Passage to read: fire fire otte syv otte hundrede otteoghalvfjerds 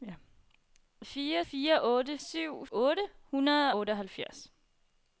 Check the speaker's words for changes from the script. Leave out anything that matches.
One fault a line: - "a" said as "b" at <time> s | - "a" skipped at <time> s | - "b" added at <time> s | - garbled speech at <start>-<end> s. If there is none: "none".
none